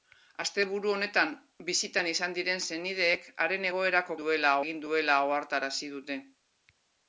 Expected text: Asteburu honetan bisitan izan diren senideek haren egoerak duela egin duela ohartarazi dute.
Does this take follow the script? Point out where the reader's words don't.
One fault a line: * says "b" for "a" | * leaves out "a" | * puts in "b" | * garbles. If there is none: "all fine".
all fine